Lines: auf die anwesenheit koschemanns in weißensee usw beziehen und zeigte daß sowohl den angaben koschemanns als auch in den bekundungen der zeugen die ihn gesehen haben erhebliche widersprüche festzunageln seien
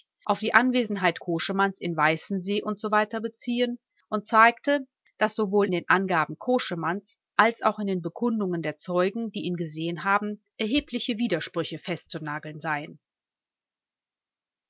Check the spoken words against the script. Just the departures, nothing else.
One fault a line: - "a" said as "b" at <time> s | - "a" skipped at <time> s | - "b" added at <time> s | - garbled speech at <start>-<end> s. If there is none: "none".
none